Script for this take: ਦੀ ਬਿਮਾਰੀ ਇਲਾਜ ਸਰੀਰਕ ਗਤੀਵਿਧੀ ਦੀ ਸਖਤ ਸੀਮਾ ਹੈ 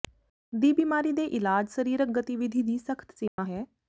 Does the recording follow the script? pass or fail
fail